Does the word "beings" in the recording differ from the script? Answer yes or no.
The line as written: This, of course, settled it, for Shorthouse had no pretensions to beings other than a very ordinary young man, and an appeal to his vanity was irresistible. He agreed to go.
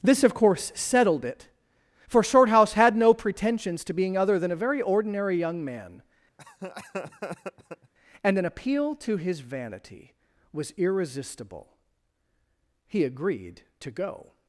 yes